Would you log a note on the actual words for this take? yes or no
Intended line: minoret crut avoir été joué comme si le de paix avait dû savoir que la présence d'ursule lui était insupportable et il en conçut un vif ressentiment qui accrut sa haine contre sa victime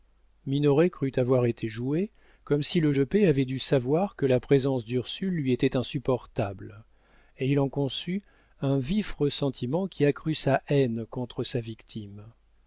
no